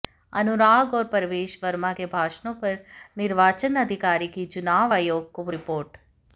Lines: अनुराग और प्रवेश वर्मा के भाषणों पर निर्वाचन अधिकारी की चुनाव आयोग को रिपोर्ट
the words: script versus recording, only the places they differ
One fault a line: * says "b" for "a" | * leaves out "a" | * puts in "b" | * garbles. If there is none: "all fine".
all fine